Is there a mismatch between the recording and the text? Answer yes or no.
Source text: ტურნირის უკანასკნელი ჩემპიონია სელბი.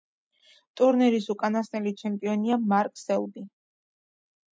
yes